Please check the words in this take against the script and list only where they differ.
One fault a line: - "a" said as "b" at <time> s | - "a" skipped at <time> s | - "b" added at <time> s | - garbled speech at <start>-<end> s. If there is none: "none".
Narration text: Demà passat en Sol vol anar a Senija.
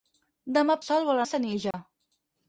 - "passat en" skipped at 0.8 s
- "anar" skipped at 1.2 s